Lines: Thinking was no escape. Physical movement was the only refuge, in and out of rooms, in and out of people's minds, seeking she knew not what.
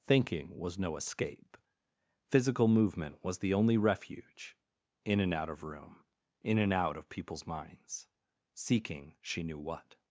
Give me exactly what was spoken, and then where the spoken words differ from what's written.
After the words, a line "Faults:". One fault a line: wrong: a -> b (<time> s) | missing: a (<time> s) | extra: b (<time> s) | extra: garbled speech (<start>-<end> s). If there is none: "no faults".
Thinking was no escape. Physical movement was the only refuge, in and out of room, in and out of people's minds, seeking she knew what.
Faults:
wrong: rooms -> room (5.6 s)
missing: not (9.6 s)